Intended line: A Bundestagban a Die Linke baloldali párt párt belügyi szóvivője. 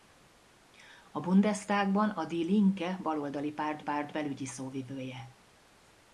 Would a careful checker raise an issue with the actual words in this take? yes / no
no